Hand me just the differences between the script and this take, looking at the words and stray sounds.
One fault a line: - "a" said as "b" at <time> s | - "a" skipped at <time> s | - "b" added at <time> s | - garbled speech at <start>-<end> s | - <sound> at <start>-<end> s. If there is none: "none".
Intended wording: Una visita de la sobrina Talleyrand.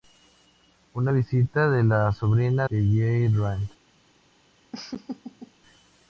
- laugh at 4.7-5.5 s